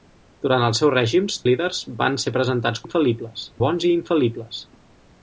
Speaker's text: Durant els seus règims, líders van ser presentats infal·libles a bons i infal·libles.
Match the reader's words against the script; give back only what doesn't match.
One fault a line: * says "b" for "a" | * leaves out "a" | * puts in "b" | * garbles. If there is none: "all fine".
all fine